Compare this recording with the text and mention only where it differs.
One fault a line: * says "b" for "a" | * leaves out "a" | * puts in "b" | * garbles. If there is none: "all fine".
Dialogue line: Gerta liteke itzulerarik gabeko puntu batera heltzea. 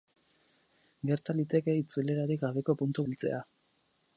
* leaves out "batera"